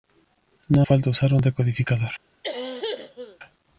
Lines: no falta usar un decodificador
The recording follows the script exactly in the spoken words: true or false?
true